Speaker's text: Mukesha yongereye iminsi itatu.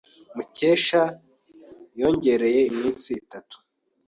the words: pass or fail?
pass